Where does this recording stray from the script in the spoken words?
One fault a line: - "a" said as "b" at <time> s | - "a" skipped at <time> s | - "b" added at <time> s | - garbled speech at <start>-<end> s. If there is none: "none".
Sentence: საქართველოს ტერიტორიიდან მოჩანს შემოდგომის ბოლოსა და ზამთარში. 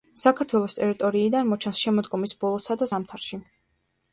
none